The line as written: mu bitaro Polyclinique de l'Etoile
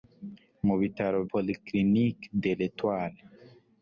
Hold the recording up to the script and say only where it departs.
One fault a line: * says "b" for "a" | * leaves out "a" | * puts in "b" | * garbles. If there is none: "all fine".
all fine